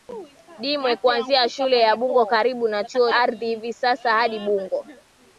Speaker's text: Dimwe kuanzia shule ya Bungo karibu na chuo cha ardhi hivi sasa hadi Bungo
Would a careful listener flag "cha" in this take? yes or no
yes